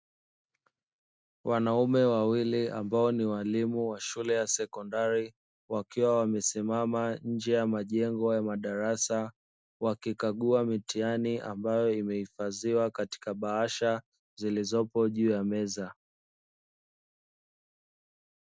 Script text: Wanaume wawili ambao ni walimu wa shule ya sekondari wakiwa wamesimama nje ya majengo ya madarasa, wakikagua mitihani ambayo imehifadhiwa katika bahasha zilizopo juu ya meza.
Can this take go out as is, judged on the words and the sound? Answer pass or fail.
pass